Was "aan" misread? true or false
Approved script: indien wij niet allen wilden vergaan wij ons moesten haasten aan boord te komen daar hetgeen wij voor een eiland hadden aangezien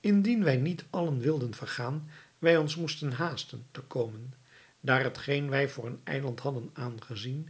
true